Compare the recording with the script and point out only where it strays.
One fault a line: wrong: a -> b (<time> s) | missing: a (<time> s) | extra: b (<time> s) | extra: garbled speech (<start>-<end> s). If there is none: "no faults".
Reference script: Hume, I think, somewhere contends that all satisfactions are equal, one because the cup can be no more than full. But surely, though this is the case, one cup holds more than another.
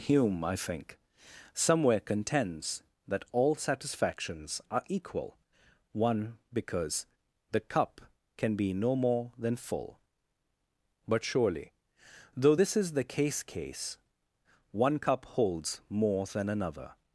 extra: case (13.4 s)